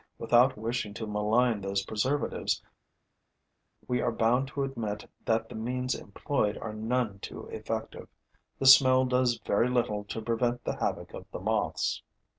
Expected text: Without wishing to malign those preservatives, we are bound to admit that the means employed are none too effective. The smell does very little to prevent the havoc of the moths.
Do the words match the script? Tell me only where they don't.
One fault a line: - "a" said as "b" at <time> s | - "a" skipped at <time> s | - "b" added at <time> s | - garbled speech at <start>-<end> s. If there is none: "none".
none